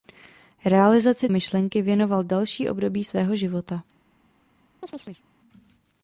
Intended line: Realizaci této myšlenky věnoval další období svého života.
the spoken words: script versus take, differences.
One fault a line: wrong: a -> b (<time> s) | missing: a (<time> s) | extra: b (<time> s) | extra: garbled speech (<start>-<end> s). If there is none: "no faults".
missing: této (1.3 s)